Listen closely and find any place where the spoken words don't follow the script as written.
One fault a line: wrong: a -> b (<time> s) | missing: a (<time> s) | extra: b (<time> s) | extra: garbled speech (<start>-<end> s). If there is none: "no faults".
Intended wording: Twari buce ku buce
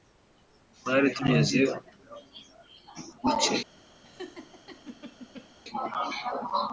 wrong: buce -> tugeze (1.1 s)